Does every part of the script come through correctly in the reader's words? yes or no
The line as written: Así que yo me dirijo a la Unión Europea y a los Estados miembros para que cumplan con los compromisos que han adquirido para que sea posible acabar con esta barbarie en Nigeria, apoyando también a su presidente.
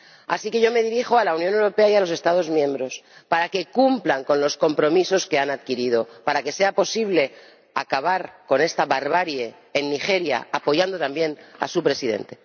yes